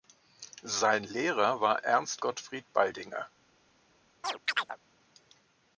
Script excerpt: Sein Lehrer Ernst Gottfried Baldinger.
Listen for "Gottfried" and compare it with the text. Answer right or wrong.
right